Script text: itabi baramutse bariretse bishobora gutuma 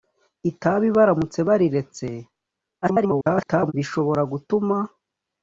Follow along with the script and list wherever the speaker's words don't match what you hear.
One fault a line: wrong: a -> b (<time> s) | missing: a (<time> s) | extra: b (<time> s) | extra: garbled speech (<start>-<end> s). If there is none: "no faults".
extra: garbled speech (2.8-3.7 s)